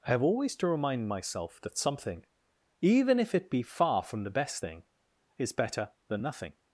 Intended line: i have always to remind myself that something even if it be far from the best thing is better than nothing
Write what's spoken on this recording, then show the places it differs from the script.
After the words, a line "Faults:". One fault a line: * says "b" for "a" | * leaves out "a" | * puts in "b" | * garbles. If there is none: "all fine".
i have always to remind myself that something even if it be far from the best thing is better than nothing
Faults:
all fine